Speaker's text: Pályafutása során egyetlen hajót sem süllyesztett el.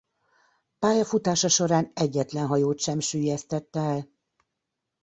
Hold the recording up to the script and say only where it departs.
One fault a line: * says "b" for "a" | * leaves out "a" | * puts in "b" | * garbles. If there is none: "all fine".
all fine